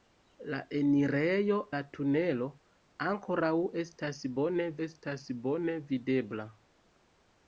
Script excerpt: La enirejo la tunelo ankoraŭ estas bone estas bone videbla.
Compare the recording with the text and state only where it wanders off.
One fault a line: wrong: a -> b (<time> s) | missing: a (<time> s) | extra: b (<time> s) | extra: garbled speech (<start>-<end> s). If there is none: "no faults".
no faults